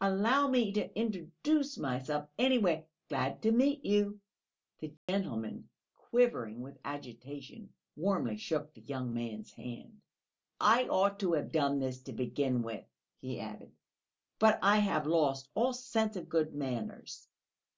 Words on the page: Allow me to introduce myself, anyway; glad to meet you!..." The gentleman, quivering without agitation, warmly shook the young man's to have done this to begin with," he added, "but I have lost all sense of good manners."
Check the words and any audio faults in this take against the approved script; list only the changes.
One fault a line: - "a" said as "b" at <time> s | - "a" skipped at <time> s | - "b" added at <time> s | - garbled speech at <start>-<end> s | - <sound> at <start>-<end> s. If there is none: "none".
- dropout at 5.0-5.1 s
- "without" said as "with" at 6.6 s
- "hand I ought" added at 9.5 s